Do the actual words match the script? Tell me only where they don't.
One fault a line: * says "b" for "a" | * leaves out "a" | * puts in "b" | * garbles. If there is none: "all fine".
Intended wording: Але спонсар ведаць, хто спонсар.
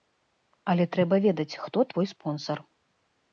* says "трэба" for "спонсар"
* puts in "твой"